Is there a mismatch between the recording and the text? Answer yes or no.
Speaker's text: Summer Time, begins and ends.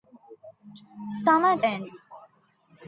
yes